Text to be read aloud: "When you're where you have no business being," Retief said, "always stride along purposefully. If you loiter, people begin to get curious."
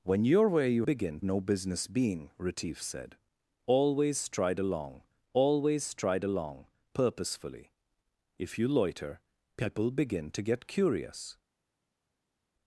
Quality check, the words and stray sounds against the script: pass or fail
fail